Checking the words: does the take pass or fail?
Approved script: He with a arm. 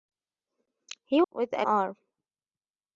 pass